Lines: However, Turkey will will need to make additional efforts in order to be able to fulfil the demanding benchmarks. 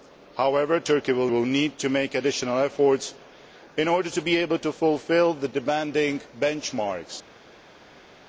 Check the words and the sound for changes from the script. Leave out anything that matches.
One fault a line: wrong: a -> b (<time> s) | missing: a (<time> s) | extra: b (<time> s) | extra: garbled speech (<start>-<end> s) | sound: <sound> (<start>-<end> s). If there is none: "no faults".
no faults